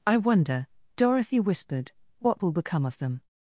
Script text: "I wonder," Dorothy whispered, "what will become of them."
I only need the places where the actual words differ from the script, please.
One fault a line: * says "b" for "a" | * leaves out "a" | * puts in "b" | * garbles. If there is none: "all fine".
all fine